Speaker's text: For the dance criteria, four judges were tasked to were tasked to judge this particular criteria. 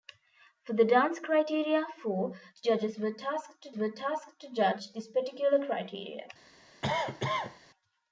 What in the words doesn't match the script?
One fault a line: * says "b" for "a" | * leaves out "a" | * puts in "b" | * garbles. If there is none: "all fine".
all fine